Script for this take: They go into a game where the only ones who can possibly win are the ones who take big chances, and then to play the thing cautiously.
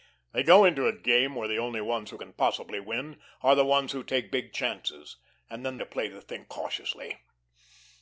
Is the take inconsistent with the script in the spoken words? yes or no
no